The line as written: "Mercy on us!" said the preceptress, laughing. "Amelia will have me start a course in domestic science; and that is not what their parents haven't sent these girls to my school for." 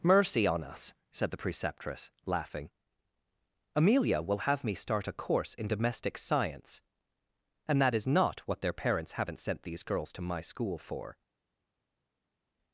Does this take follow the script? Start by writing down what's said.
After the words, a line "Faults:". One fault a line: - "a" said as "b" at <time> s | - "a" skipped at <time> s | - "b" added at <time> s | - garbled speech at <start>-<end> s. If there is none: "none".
"Mercy on us!" said the preceptress, laughing. "Amelia will have me start a course in domestic science; and that is not what their parents haven't sent these girls to my school for."
Faults:
none